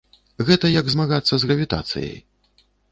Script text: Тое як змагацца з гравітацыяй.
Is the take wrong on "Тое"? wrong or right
wrong